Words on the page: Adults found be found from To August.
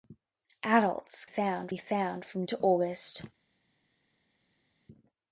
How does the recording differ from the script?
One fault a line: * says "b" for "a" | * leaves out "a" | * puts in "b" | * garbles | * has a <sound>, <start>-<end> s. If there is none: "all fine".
all fine